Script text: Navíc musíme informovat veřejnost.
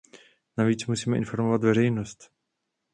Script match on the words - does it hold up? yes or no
yes